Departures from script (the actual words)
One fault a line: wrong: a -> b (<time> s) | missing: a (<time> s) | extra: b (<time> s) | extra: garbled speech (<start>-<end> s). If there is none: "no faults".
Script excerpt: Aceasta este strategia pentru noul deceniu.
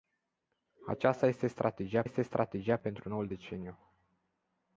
extra: este strategia (2.0 s)